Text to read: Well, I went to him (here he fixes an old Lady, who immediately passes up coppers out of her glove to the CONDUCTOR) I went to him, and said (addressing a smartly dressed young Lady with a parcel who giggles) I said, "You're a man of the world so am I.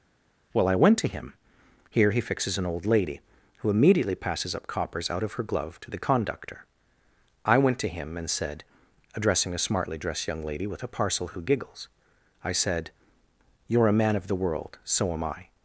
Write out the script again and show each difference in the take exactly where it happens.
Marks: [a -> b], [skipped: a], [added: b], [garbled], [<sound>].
Well, I went to him (here he fixes an old Lady, who immediately passes up coppers out of her glove to the CONDUCTOR) I went to him, and said (addressing a smartly dressed young Lady with a parcel who giggles) I said, "You're a man of the world so am I.